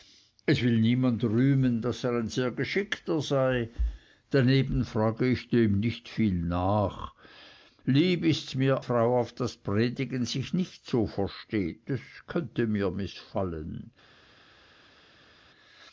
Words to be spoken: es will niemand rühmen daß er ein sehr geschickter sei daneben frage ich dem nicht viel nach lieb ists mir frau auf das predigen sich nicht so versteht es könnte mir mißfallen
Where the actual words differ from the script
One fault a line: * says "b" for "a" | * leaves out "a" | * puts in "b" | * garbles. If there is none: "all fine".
all fine